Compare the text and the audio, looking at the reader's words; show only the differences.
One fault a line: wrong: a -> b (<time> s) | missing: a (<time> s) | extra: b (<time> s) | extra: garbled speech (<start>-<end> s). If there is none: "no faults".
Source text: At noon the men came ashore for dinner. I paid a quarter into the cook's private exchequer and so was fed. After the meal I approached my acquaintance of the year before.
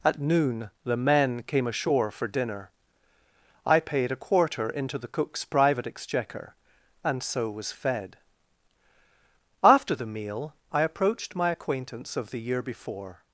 no faults